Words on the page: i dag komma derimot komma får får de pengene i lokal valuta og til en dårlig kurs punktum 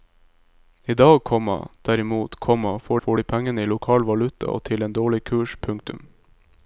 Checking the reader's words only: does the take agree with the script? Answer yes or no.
yes